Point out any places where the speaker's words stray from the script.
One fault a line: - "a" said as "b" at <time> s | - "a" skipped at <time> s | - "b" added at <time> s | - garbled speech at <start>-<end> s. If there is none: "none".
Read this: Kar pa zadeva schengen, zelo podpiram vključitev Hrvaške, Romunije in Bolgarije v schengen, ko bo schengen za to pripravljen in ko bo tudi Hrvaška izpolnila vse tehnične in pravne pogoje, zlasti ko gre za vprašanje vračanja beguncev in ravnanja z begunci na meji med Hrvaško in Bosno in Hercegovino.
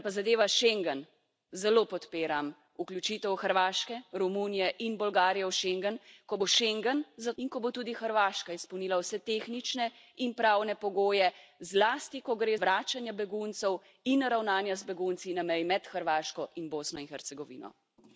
- "to pripravljen" skipped at 7.3 s
- "za vprašanje" skipped at 12.5 s